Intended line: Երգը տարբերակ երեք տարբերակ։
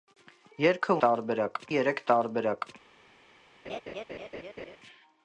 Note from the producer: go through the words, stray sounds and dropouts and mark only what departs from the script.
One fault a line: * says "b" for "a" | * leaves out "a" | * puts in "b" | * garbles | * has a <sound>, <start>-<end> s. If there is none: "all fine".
* has a laugh, 3.6-4.8 s